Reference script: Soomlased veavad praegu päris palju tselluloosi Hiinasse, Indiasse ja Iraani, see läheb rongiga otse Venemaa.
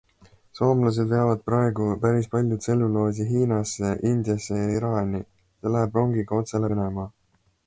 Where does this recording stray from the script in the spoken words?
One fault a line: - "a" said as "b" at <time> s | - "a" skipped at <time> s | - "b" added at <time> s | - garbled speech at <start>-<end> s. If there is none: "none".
none